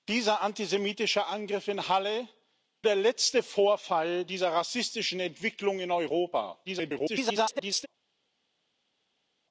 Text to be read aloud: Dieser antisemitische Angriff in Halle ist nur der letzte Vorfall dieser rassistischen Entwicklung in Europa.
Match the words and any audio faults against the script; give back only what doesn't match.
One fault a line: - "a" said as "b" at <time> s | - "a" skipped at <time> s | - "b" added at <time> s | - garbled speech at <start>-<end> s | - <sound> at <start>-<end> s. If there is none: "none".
- "ist nur" skipped at 2.3 s
- garbled speech at 6.6-7.9 s